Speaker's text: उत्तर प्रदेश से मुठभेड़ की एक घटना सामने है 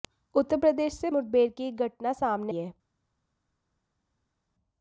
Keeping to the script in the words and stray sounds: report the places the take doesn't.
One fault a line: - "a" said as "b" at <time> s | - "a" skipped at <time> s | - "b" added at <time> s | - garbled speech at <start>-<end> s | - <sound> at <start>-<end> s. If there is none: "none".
none